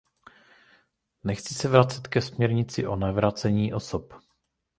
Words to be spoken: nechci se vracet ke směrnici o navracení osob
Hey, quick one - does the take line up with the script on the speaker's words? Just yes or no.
yes